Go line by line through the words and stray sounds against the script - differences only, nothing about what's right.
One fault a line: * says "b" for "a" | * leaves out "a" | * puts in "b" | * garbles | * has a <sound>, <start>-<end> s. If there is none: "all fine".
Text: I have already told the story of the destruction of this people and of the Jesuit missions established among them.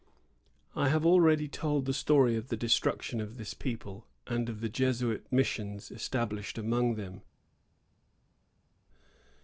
all fine